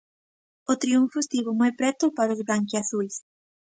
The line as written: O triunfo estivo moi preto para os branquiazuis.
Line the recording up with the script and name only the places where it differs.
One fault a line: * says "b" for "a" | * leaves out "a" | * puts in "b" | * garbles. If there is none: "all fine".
all fine